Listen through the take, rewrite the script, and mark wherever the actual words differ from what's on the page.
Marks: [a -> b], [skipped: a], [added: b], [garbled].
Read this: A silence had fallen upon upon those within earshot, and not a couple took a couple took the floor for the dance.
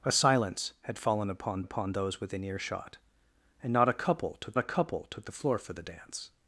A silence had fallen upon upon those within earshot, and not a couple took a couple took the floor for the dance.